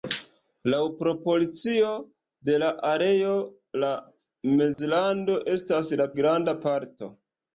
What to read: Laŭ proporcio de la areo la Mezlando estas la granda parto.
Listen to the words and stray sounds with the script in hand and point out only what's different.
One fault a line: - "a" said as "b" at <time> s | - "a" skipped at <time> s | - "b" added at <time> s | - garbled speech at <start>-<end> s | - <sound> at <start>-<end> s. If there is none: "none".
- dropout at 4.7-4.8 s